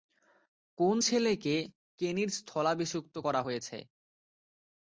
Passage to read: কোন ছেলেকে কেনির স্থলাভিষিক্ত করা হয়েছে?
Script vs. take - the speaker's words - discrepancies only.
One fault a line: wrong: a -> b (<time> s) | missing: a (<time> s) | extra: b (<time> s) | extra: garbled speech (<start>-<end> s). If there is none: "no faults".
no faults